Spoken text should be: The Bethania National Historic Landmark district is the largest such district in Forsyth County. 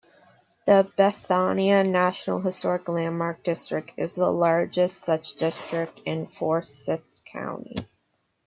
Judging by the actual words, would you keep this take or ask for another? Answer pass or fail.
pass